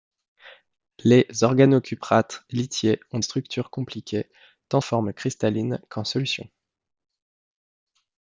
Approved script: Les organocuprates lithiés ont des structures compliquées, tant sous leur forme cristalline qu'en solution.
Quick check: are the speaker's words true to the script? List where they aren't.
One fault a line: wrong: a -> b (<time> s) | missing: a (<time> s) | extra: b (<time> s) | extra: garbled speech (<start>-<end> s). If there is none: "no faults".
missing: des (3.2 s)
missing: sous leur (4.8 s)